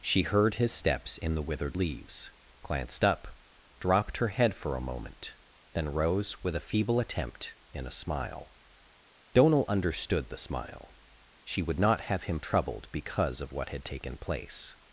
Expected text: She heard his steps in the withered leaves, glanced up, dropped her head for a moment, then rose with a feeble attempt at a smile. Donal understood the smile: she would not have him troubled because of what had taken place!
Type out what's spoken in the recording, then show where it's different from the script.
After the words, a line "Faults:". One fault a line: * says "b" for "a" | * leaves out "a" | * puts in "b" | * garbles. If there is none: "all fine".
She heard his steps in the withered leaves, glanced up, dropped her head for a moment, then rose with a feeble attempt in a smile. Donal understood the smile: she would not have him troubled because of what had taken place!
Faults:
* says "in" for "at"